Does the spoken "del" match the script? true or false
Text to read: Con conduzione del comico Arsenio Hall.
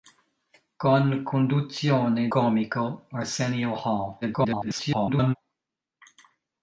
false